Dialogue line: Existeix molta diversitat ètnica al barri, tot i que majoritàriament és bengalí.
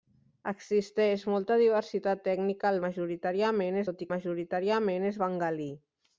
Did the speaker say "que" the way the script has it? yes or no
no